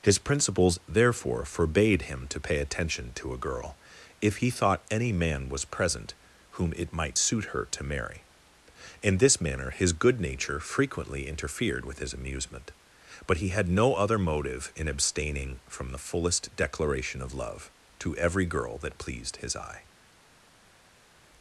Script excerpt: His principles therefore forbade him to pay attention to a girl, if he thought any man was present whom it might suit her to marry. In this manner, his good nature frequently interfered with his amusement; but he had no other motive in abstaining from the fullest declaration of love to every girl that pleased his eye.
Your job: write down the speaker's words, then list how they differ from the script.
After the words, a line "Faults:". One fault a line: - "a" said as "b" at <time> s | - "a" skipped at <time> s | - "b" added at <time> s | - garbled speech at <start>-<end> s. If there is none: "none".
His principles therefore forbade him to pay attention to a girl, if he thought any man was present whom it might suit her to marry. In this manner, his good nature frequently interfered with his amusement; but he had no other motive in abstaining from the fullest declaration of love to every girl that pleased his eye.
Faults:
none